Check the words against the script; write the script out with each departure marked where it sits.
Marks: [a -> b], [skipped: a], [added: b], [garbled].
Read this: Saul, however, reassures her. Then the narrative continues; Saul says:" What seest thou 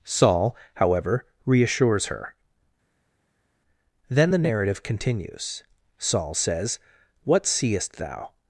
Saul, however, reassures her. Then the narrative continues; Saul says:" What seest thou